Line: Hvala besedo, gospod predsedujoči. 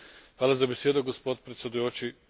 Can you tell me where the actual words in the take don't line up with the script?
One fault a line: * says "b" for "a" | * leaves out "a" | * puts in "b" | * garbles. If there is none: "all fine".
* puts in "za"